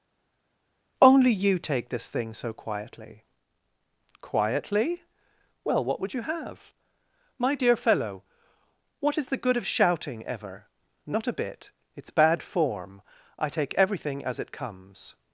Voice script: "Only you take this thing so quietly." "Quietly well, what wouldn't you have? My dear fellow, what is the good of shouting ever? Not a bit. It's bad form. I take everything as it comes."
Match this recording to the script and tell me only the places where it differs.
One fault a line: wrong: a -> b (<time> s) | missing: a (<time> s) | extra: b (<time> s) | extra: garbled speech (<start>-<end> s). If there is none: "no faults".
wrong: wouldn't -> would (6.0 s)